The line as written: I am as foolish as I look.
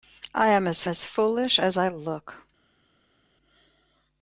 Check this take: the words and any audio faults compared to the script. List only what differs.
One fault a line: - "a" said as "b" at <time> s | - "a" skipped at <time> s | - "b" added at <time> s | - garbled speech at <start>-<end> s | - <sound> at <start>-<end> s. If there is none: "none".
- "as" added at 0.9 s